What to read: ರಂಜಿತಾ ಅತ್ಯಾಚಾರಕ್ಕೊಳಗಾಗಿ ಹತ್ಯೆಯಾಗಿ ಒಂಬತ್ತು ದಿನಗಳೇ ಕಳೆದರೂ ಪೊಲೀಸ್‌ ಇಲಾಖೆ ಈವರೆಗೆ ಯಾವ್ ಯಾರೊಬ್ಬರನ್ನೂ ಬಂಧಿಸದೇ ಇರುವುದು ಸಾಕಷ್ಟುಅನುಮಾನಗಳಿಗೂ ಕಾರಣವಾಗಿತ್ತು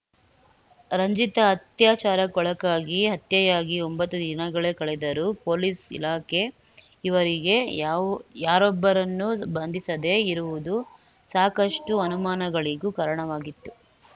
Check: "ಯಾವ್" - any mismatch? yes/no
no